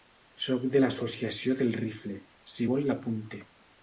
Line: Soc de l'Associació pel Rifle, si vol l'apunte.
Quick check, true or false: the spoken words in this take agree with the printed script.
false